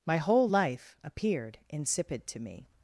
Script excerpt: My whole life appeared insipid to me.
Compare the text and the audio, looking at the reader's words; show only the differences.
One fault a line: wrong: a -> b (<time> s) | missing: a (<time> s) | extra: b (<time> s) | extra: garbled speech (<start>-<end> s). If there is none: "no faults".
no faults